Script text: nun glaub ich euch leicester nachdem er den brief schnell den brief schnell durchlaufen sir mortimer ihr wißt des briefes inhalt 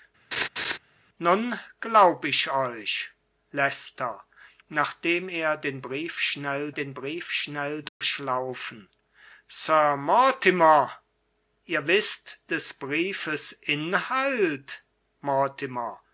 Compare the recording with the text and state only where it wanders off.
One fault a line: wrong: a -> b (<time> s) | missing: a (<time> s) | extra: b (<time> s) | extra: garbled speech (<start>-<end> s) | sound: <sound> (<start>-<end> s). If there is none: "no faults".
sound: laugh (0.3-0.8 s)
sound: dropout (7.9-8.0 s)